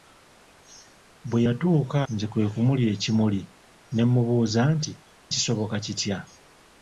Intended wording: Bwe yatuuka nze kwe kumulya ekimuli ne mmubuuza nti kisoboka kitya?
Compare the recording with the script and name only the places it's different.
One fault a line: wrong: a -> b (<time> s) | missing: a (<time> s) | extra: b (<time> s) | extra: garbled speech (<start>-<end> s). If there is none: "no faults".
no faults